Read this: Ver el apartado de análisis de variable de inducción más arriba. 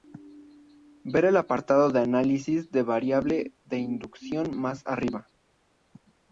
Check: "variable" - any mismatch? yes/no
no